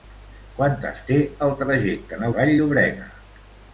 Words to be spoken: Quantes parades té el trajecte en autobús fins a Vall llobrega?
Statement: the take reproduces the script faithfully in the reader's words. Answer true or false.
false